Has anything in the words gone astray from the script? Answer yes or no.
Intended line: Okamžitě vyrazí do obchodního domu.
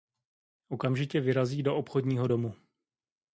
no